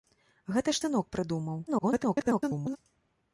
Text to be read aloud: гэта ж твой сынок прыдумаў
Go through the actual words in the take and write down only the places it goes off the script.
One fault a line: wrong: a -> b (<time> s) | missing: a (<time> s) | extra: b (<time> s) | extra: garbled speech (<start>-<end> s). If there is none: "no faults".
missing: твой (0.8 s)
extra: garbled speech (1.7-2.8 s)